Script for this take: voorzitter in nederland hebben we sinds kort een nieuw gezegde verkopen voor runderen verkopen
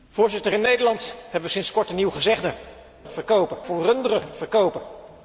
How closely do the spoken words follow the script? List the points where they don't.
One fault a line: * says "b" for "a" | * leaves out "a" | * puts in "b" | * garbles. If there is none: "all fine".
all fine